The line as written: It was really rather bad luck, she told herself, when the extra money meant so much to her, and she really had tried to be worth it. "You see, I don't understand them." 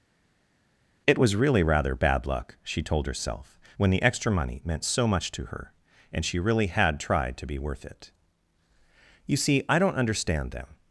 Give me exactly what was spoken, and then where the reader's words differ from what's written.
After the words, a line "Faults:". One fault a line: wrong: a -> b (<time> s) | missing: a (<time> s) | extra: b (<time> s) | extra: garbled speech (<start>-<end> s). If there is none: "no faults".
It was really rather bad luck, she told herself, when the extra money meant so much to her, and she really had tried to be worth it. "You see, I don't understand them."
Faults:
no faults